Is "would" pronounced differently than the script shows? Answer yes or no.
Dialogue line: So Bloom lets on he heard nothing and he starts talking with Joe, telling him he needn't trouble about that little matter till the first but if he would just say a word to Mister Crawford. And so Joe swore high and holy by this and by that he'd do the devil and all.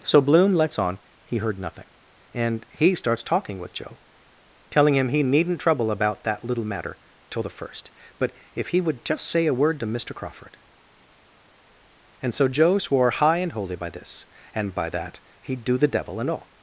no